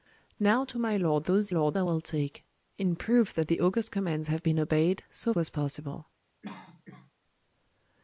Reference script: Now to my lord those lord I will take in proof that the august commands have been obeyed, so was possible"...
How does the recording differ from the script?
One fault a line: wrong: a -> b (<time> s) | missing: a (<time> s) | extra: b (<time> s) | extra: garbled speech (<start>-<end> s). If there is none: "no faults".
no faults